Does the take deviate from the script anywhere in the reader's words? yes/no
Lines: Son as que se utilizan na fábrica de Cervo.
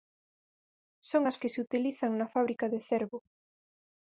no